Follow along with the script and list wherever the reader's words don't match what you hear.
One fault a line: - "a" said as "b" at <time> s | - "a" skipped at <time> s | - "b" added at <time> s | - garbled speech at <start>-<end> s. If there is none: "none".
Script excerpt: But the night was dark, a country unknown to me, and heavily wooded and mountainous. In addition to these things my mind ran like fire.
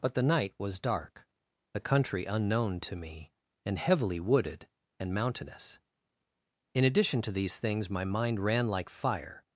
none